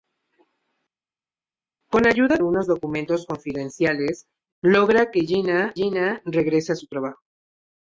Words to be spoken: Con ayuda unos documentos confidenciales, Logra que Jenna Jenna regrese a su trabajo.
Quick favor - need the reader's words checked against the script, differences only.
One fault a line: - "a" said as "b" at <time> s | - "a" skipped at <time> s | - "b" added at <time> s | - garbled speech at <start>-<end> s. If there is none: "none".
none